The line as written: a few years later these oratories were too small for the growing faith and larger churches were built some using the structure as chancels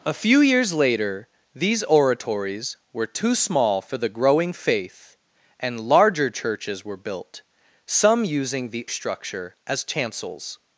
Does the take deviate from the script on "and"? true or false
false